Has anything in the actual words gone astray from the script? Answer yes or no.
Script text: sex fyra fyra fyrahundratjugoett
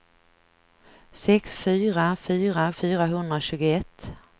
no